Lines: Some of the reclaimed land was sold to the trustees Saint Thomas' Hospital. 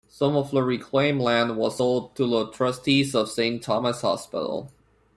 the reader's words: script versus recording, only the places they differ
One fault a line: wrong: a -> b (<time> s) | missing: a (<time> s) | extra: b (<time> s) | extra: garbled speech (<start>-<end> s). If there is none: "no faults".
extra: of (3.2 s)